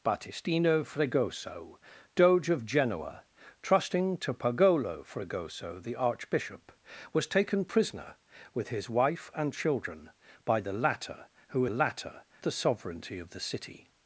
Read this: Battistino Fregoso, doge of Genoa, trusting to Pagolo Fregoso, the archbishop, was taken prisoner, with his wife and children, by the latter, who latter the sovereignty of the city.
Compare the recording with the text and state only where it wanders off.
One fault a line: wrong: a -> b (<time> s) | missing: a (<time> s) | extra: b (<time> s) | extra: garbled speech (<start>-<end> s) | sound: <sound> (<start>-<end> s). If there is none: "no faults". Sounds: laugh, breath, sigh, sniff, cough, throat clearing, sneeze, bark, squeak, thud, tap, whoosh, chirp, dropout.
no faults